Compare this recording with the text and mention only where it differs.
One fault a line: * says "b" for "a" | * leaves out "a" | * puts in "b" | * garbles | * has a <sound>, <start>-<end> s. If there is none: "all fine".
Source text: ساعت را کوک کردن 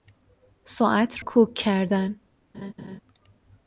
* leaves out "را"
* has a laugh, 2.5-3.0 s